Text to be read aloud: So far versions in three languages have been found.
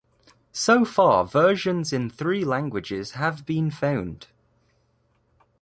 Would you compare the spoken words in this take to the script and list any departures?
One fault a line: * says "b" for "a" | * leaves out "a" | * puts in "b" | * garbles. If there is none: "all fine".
all fine